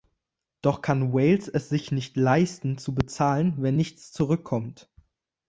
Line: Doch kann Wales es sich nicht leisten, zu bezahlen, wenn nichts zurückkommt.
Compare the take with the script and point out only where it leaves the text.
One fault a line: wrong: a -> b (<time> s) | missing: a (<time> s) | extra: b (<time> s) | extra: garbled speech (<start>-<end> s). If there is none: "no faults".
no faults